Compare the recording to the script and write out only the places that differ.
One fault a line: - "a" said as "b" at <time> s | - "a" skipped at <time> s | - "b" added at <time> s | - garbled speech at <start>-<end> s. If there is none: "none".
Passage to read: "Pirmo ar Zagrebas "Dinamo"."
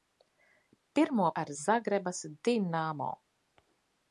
none